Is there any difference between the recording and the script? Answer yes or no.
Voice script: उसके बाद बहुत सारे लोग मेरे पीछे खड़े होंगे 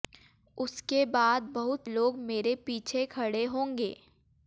yes